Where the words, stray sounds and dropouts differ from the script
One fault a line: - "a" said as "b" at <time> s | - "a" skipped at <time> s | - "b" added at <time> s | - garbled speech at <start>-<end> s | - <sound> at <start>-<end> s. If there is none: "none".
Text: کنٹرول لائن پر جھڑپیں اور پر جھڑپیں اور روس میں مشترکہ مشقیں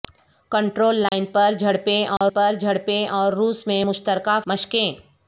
- dropout at 1.1-1.1 s
- dropout at 2.2-2.2 s